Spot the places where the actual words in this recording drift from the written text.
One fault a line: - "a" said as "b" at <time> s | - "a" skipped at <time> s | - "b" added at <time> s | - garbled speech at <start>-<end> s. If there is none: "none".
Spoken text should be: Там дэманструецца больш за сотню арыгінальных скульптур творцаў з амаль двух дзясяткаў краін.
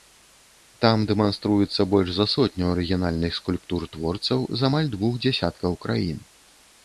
none